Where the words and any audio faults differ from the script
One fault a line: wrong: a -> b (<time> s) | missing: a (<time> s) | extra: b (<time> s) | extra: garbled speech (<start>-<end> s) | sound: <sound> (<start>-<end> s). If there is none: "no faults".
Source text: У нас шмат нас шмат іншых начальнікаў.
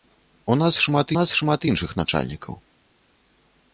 no faults